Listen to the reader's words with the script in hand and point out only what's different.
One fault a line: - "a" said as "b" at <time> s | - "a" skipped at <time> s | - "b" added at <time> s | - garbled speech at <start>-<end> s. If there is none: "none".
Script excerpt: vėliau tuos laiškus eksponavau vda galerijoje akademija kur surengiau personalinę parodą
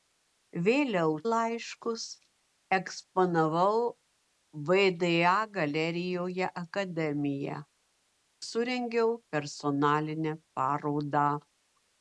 - "tuos" skipped at 1.1 s
- "kur" skipped at 7.6 s